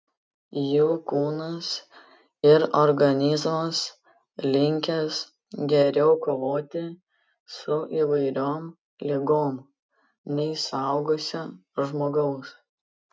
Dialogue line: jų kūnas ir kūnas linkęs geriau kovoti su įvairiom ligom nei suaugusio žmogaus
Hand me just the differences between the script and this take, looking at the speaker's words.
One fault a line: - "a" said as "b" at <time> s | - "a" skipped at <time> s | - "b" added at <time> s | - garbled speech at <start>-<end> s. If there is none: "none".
- "kūnas" said as "organizmas" at 2.8 s